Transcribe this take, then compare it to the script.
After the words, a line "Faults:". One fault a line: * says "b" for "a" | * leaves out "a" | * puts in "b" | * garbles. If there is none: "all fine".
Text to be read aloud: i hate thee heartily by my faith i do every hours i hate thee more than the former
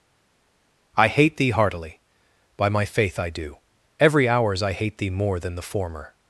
i hate thee heartily by my faith i do every hours i hate thee more than the former
Faults:
all fine